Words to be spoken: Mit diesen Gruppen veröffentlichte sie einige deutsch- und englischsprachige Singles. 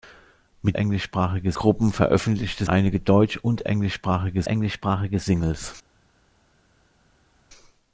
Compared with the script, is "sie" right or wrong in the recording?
wrong